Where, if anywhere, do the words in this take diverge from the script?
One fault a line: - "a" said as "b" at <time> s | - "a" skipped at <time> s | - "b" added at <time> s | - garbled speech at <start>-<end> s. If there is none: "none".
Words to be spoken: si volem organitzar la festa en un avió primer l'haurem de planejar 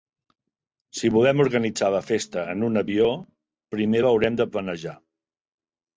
none